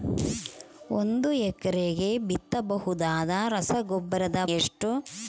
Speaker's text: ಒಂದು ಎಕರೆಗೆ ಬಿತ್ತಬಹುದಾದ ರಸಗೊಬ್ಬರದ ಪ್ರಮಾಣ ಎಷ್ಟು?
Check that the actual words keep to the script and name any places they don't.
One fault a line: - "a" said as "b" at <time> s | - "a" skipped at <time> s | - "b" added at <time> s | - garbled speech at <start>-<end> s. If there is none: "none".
- "ಪ್ರಮಾಣ" skipped at 4.4 s